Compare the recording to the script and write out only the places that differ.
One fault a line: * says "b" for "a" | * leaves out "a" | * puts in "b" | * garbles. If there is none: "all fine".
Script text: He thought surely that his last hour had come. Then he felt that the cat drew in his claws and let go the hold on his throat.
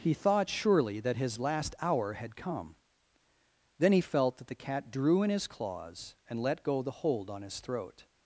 all fine